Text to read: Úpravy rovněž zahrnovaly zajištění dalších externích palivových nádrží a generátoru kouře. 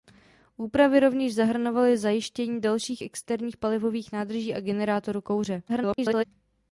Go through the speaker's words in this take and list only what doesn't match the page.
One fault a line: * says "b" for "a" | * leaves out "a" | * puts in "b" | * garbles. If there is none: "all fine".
* garbles